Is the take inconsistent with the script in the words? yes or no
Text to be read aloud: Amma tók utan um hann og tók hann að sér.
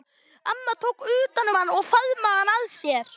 yes